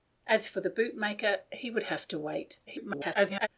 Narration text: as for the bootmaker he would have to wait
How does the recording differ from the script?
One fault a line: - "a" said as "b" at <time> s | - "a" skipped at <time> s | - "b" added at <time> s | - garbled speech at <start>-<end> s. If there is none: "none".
- garbled speech at 2.7-3.5 s